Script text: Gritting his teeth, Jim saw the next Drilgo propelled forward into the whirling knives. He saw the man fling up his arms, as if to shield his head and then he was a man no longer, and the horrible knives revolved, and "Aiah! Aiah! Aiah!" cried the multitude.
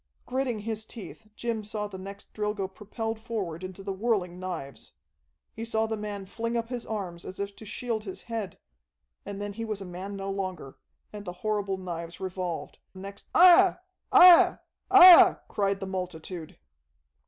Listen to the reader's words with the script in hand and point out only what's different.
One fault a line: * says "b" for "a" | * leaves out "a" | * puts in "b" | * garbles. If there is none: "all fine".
* says "next" for "and"